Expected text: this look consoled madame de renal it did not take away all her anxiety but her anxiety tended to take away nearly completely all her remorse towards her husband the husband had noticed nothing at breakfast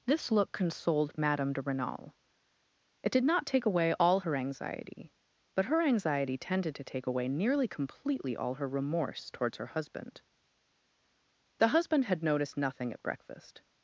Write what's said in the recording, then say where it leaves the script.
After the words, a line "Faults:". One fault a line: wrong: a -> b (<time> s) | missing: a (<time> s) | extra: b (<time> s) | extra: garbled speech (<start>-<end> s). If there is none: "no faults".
this look consoled madame de renal it did not take away all her anxiety but her anxiety tended to take away nearly completely all her remorse towards her husband the husband had noticed nothing at breakfast
Faults:
no faults